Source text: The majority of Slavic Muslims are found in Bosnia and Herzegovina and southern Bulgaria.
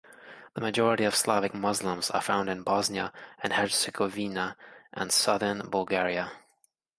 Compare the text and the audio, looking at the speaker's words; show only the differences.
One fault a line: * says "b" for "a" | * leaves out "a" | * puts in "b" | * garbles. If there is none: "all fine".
all fine